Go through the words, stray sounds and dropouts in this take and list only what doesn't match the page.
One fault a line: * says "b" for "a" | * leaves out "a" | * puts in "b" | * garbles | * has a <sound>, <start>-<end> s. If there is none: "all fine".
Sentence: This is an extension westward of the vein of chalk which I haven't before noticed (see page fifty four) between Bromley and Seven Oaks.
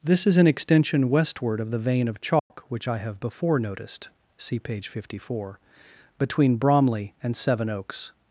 * has a dropout, 2.4-2.5 s
* says "have" for "haven't"